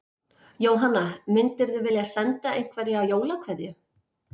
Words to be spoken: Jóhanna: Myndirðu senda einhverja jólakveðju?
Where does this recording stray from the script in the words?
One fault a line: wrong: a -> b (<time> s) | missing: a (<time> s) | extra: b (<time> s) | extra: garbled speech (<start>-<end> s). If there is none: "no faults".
extra: vilja (1.9 s)